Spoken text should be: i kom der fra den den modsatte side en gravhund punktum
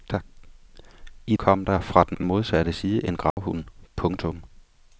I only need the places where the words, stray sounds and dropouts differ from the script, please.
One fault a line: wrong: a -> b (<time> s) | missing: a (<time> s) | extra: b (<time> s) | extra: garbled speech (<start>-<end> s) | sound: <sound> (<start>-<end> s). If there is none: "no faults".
sound: dropout (3.3-3.4 s)